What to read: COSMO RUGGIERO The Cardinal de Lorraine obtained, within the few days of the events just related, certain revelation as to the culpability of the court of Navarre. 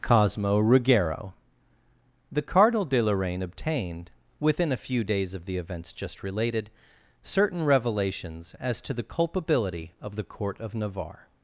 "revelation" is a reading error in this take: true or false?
true